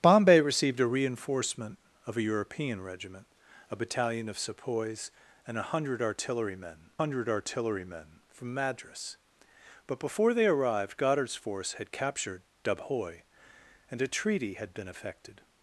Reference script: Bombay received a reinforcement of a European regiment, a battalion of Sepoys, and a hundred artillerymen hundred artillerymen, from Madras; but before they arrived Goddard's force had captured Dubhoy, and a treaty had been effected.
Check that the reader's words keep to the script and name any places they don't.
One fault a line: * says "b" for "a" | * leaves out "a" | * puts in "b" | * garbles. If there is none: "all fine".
all fine